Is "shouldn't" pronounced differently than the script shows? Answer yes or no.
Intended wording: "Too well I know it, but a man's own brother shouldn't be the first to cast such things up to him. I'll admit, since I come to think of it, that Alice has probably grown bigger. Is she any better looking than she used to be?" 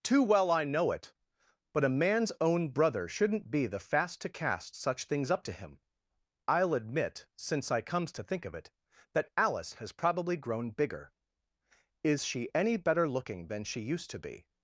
no